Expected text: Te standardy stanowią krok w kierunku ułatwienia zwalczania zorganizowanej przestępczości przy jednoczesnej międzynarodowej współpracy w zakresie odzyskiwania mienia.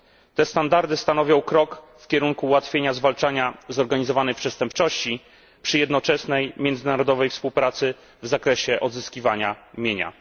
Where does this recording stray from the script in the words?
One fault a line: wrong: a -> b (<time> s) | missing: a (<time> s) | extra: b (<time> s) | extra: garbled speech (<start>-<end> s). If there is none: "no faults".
no faults